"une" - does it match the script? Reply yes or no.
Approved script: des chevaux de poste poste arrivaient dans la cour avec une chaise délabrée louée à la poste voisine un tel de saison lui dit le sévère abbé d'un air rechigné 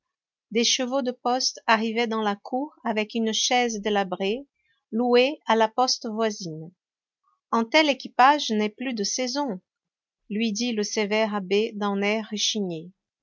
yes